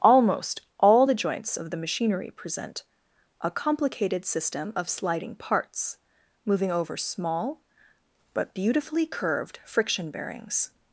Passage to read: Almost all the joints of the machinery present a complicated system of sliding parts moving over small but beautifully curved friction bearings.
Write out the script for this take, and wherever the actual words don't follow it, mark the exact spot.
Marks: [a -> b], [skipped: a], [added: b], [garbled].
Almost all the joints of the machinery present a complicated system of sliding parts moving over small but beautifully curved friction bearings.